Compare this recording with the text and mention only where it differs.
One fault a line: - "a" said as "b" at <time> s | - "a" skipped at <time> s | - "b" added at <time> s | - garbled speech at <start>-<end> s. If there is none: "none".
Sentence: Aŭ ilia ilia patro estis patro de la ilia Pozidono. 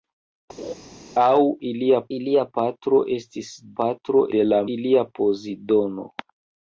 none